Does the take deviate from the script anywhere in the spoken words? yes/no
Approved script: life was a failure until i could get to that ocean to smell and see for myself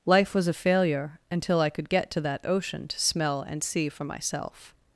no